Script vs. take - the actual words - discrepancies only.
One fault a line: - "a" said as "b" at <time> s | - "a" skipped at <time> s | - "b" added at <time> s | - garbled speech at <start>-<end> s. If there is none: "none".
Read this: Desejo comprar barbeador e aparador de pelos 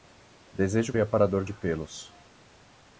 - "comprar barbeador" skipped at 0.9 s